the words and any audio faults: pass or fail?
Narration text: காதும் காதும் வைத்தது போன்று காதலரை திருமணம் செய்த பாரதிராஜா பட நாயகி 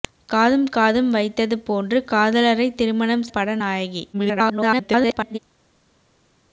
fail